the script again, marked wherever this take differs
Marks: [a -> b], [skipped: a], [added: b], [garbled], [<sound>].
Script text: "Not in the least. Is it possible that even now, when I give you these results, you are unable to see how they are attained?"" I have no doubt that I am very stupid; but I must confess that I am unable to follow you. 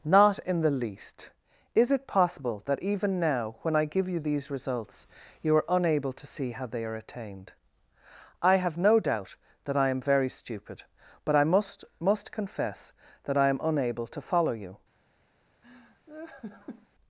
"Not in the least. Is it possible that even now, when I give you these results, you are unable to see how they are attained?"" I have no doubt that I am very stupid; but I must [added: must] confess that I am unable to follow you. [laugh]